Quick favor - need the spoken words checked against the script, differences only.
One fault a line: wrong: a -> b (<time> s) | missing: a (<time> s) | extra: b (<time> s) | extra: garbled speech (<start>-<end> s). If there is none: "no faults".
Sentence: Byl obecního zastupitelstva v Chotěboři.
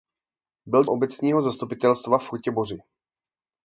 no faults